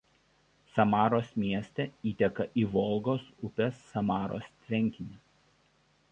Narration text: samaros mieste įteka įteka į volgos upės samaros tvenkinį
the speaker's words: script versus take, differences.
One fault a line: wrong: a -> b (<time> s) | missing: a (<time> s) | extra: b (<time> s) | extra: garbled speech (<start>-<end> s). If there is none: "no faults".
missing: įteka (2.5 s)